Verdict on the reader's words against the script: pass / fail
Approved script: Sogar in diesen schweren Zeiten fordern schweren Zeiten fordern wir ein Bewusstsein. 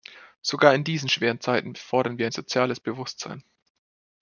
fail